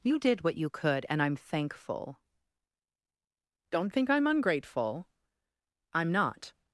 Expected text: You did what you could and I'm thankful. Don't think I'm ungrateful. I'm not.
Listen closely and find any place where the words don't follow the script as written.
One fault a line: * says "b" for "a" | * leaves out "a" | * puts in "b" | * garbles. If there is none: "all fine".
all fine